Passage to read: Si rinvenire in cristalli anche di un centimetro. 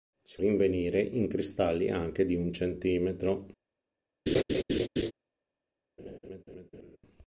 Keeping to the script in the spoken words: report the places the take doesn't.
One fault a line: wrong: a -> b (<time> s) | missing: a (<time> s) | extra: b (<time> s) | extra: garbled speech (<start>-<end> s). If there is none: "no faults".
no faults